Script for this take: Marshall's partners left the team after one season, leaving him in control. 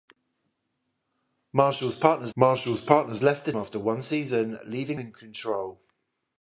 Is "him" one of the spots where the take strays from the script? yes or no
yes